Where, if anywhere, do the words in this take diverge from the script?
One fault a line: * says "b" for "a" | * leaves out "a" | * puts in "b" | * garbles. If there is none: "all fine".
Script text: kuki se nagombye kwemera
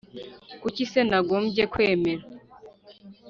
all fine